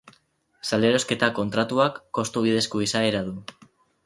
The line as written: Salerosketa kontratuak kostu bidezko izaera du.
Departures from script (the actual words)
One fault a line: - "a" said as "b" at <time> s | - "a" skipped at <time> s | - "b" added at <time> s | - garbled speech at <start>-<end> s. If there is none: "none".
none